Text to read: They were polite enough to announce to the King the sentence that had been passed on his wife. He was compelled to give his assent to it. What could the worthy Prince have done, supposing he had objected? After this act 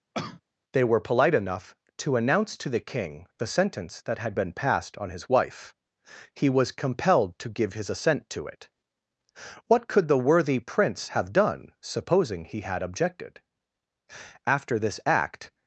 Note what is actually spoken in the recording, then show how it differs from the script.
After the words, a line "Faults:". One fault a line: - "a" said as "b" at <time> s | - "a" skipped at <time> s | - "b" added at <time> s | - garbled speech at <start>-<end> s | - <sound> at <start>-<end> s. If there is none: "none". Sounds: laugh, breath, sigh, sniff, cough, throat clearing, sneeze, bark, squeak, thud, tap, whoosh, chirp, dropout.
They were polite enough to announce to the King the sentence that had been passed on his wife. He was compelled to give his assent to it. What could the worthy Prince have done, supposing he had objected? After this act
Faults:
- cough at 0.1-0.4 s